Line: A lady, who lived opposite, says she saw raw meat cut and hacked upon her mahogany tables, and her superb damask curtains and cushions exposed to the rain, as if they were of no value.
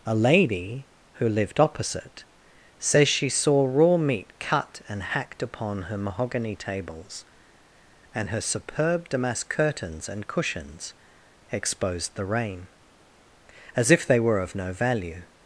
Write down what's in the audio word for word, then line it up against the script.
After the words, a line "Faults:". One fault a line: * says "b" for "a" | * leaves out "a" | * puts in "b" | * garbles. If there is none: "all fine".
A lady, who lived opposite, says she saw raw meat cut and hacked upon her mahogany tables, and her superb damask curtains and cushions exposed the rain, as if they were of no value.
Faults:
* leaves out "to"